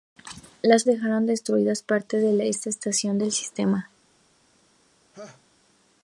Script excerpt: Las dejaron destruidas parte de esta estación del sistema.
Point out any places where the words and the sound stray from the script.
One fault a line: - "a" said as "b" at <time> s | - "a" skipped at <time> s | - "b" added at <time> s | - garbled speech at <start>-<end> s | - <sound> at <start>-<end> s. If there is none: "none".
- laugh at 5.1-5.4 s